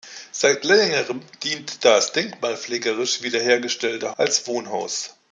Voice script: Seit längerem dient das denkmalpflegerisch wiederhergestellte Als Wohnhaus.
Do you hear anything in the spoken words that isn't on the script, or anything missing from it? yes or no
no